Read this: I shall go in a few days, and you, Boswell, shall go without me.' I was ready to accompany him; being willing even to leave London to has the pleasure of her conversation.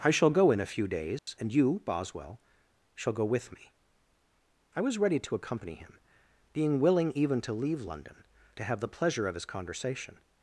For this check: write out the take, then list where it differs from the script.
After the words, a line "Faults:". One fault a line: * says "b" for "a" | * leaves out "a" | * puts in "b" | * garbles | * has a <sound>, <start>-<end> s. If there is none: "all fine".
I shall go in a few days, and you, Boswell, shall go with me.' I was ready to accompany him; being willing even to leave London to have the pleasure of his conversation.
Faults:
* has a dropout, 1.2-1.3 s
* says "with" for "without"
* says "have" for "has"
* says "his" for "her"